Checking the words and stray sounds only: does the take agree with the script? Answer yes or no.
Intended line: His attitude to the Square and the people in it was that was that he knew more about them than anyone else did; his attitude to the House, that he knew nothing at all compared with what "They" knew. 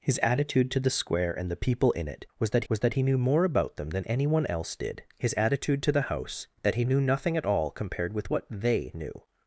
yes